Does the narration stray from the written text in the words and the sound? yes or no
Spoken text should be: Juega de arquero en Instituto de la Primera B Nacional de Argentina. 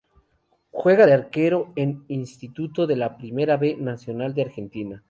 no